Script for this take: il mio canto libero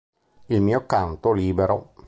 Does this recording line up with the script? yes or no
yes